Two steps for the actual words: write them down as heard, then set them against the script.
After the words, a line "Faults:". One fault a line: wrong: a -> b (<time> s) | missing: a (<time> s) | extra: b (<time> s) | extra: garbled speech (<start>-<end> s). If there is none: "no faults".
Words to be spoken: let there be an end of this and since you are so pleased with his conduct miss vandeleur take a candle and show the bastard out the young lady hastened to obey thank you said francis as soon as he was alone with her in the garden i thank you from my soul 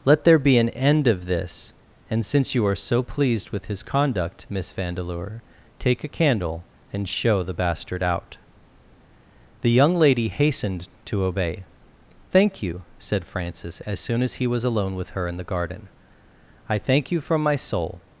let there be an end of this and since you are so pleased with his conduct miss vandeleur take a candle and show the bastard out the young lady hastened to obey thank you said francis as soon as he was alone with her in the garden i thank you from my soul
Faults:
no faults